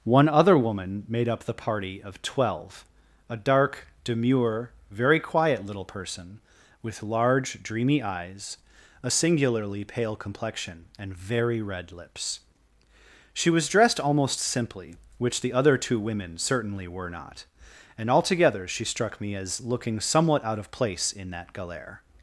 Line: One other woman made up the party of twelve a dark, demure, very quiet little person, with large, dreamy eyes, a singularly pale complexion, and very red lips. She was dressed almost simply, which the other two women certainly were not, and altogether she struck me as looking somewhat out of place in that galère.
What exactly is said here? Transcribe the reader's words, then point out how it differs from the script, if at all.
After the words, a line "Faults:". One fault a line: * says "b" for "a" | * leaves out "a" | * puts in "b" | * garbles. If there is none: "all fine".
One other woman made up the party of twelve a dark, demure, very quiet little person, with large, dreamy eyes, a singularly pale complexion, and very red lips. She was dressed almost simply, which the other two women certainly were not, and altogether she struck me as looking somewhat out of place in that galère.
Faults:
all fine